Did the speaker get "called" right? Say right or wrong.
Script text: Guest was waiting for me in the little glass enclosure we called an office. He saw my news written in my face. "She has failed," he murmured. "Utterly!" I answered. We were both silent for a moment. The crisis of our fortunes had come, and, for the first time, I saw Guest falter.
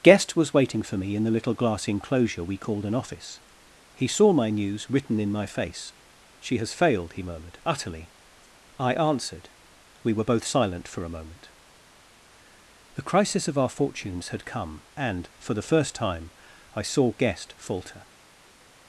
right